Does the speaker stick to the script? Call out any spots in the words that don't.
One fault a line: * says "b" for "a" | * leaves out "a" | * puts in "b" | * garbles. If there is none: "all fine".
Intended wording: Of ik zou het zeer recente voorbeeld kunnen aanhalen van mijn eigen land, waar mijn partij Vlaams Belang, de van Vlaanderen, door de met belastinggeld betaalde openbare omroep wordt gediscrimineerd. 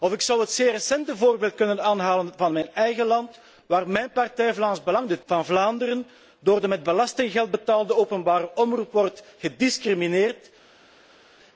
all fine